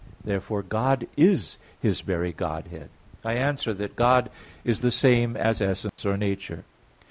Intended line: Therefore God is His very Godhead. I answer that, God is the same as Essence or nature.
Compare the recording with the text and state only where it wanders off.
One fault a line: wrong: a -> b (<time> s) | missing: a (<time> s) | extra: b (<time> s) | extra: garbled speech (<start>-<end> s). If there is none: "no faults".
no faults